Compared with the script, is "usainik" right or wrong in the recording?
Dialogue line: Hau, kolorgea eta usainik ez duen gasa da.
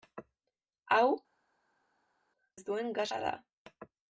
wrong